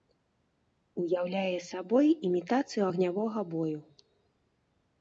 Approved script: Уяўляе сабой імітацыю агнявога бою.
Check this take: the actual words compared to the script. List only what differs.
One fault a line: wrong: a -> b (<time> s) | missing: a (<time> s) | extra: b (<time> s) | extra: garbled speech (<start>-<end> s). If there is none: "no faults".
no faults